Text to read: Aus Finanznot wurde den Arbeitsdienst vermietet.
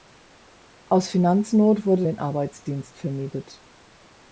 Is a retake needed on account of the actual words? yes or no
no